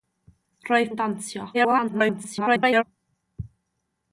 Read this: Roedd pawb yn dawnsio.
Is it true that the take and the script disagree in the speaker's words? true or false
true